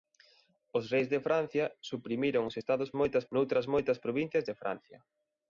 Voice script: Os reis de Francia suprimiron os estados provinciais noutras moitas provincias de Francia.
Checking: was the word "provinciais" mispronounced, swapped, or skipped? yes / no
yes